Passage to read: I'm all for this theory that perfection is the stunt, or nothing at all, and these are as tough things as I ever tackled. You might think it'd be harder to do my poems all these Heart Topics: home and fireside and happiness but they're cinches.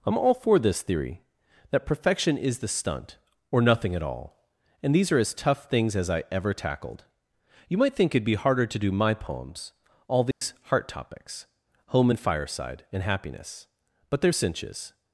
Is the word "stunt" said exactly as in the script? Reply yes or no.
yes